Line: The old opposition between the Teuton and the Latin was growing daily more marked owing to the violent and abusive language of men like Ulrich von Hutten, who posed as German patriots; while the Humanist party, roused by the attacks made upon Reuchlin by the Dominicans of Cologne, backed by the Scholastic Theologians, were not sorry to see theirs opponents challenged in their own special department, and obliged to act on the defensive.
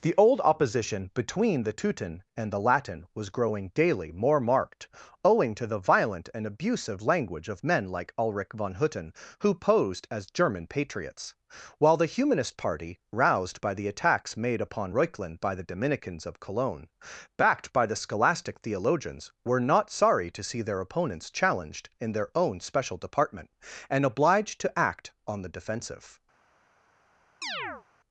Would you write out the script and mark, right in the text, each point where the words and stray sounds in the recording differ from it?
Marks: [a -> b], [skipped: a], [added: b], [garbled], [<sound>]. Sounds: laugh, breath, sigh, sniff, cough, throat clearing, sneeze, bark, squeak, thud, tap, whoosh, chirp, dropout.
The old opposition between the Teuton and the Latin was growing daily more marked owing to the violent and abusive language of men like Ulrich von Hutten, who posed as German patriots; while the Humanist party, roused by the attacks made upon Reuchlin by the Dominicans of Cologne, backed by the Scholastic Theologians, were not sorry to see [theirs -> their] opponents challenged in their own special department, and obliged to act on the defensive. [chirp]